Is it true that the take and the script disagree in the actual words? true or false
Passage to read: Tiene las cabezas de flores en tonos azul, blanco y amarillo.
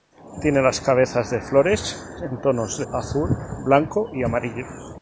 false